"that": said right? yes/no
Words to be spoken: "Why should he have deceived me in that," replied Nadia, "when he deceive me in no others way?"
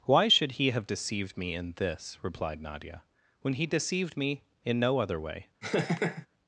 no